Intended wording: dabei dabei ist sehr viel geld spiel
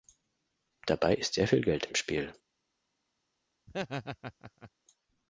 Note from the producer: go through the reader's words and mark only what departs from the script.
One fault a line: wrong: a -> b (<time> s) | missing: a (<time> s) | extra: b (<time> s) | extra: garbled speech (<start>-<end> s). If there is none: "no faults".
missing: dabei (1.1 s)
extra: im (1.9 s)